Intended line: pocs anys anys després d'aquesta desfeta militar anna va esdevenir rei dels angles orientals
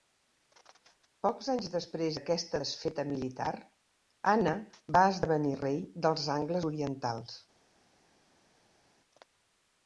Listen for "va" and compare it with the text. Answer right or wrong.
right